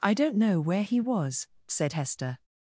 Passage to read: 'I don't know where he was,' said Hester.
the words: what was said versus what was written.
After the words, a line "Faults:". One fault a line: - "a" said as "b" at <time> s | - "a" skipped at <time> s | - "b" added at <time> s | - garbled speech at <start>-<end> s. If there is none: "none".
'I don't know where he was,' said Hester.
Faults:
none